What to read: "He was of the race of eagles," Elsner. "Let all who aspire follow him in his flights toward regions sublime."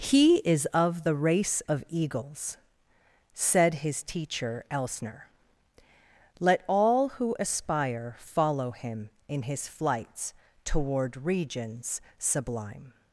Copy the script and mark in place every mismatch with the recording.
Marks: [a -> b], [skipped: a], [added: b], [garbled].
"He [was -> is] of the race of eagles," [added: said his teacher] Elsner. "Let all who aspire follow him in his flights toward regions sublime."